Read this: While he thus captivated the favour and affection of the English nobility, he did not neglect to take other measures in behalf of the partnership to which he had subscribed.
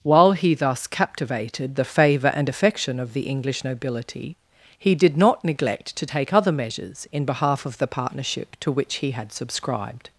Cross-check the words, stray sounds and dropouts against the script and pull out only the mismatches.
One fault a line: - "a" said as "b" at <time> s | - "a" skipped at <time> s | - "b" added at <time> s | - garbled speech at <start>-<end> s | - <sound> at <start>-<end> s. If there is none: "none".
none